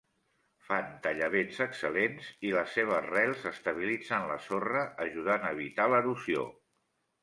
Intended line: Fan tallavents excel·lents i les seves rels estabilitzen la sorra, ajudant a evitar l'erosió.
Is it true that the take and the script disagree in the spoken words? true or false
false